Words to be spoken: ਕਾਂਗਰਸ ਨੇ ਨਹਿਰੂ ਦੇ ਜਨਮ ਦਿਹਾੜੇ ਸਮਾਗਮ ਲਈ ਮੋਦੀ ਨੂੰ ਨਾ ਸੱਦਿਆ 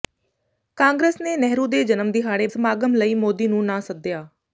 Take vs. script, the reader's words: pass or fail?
pass